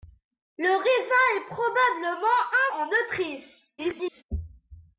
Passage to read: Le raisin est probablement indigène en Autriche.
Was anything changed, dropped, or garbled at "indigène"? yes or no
yes